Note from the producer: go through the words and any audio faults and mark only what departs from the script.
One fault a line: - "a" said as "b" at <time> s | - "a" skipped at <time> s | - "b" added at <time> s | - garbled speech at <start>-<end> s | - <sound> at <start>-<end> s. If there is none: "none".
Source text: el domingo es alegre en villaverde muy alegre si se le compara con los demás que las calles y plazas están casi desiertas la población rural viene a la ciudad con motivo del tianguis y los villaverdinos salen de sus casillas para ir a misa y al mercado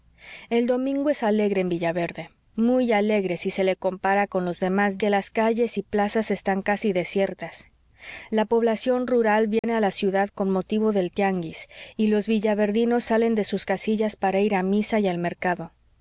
- dropout at 9.6-9.6 s